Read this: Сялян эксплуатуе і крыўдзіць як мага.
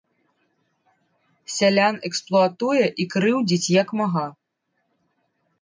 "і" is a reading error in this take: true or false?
false